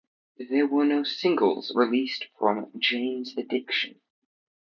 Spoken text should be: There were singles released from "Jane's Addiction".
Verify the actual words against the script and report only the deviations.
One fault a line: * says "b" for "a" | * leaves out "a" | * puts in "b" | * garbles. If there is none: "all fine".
* puts in "no"